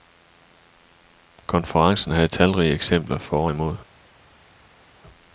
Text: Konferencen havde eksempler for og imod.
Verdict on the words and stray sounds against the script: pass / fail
fail